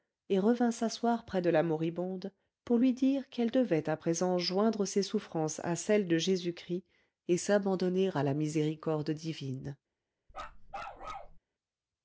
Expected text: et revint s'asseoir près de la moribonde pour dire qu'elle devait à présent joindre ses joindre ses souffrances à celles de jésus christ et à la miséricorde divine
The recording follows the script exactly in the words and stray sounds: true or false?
false